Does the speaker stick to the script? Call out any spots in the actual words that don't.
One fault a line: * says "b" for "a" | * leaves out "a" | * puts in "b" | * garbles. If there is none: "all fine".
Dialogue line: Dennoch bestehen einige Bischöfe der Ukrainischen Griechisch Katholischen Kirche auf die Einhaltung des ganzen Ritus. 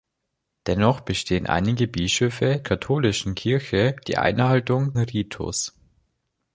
* leaves out "der Ukrainischen Griechisch"
* leaves out "auf"
* leaves out "des ganzen"